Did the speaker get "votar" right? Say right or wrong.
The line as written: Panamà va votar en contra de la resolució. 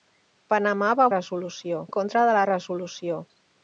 wrong